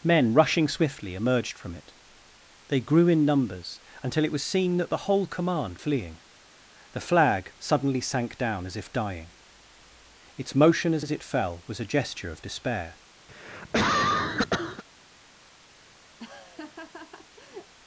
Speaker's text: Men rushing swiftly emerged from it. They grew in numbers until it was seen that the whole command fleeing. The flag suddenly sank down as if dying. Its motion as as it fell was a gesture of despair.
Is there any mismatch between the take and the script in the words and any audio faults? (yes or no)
yes